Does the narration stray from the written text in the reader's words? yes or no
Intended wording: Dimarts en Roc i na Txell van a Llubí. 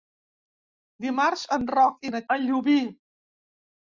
yes